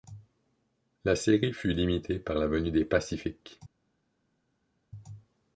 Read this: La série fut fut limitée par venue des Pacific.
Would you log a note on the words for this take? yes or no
yes